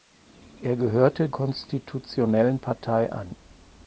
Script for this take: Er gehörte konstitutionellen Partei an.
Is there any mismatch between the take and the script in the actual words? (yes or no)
no